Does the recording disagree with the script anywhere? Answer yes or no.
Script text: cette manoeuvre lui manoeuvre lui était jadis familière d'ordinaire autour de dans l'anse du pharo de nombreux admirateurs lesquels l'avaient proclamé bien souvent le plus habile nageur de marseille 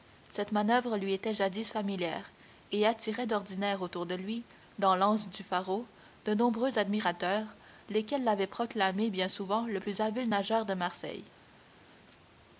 yes